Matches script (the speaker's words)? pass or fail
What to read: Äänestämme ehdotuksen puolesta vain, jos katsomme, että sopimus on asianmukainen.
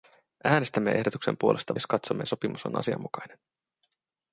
fail